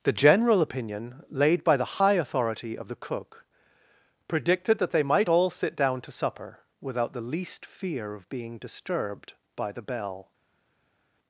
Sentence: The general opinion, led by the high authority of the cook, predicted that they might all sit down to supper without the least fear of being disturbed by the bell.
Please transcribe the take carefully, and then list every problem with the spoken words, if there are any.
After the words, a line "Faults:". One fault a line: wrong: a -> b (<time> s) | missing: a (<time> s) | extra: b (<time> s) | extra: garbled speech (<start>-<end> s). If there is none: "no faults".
The general opinion, laid by the high authority of the cook, predicted that they might all sit down to supper without the least fear of being disturbed by the bell.
Faults:
wrong: led -> laid (1.3 s)